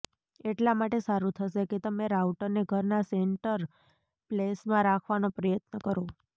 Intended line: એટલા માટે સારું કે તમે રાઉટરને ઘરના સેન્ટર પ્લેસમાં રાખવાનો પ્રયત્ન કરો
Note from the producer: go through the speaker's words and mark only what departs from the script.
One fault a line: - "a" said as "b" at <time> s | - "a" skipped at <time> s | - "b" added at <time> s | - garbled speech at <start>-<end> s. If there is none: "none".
- "થશે" added at 1.4 s